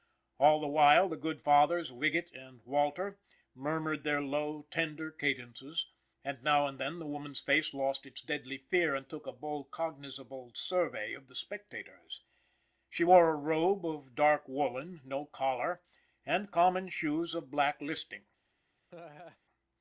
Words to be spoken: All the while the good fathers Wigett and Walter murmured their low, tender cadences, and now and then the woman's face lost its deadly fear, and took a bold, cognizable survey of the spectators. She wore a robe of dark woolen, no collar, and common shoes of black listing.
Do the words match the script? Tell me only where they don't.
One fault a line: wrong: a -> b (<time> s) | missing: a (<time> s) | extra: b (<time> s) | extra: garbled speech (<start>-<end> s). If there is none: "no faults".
no faults